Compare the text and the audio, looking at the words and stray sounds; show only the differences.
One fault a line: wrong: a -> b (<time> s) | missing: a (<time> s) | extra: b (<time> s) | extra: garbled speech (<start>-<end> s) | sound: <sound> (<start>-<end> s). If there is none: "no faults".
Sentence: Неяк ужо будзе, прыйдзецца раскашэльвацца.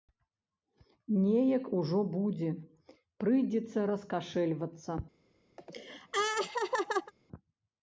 sound: laugh (5.6-7.1 s)